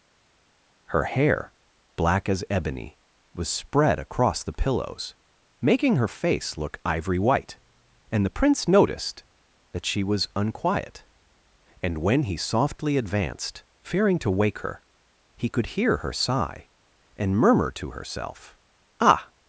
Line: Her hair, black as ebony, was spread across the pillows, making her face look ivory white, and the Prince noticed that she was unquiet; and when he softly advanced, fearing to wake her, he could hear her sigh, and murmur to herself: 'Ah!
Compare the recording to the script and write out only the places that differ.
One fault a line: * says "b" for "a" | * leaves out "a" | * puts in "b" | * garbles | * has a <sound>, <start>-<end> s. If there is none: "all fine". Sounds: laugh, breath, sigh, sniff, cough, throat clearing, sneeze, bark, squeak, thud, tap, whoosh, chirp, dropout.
all fine